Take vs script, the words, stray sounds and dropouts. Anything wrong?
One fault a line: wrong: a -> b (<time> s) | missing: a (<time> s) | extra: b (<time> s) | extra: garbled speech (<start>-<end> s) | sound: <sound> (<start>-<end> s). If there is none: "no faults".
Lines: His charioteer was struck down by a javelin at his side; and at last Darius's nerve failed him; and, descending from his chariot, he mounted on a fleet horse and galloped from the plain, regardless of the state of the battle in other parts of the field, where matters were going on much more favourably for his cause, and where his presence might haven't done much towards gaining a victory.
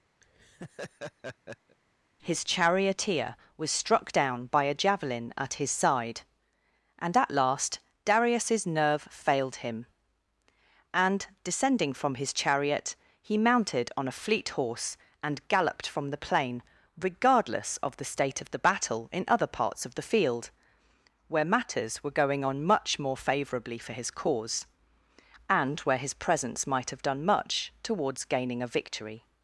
sound: laugh (0.2-1.8 s)
wrong: haven't -> have (26.9 s)